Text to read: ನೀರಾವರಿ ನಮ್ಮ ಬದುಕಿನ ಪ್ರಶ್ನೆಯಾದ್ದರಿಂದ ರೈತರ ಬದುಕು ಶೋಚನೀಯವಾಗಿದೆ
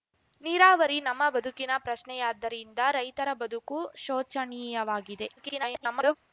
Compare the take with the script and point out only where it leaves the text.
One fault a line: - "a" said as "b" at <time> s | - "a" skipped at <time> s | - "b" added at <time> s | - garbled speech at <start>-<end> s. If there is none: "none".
- garbled speech at 5.4-6.2 s